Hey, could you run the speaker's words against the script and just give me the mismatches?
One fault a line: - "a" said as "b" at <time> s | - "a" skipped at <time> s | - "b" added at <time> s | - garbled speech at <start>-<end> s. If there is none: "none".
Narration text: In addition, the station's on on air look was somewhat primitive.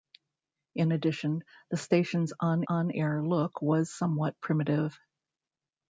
none